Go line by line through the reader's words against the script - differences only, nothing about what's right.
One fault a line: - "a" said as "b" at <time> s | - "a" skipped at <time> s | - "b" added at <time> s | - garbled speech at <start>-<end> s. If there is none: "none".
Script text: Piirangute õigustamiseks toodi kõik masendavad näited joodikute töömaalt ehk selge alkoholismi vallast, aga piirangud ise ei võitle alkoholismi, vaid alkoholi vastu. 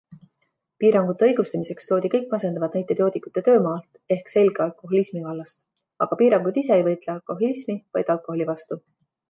none